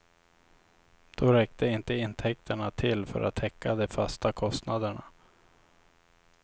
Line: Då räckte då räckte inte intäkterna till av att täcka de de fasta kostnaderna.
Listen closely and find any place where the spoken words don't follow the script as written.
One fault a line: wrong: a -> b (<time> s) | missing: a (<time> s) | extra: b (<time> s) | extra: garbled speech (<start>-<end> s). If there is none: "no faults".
missing: då räckte (1.7 s)
wrong: av -> för (3.0 s)
missing: de (3.9 s)